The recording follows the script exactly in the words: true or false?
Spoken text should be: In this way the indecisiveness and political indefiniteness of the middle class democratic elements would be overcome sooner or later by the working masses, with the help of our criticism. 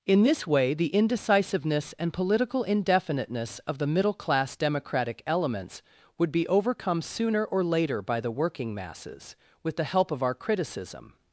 true